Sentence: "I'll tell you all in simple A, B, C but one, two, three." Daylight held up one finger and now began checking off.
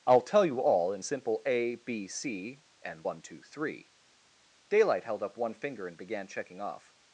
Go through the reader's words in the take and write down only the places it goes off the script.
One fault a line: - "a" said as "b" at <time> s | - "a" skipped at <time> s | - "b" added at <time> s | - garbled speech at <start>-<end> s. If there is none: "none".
- "but" said as "and" at 2.8 s
- "now" skipped at 6.0 s